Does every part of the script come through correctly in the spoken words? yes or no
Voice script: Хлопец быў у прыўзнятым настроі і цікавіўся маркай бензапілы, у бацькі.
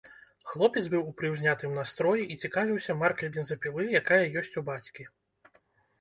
no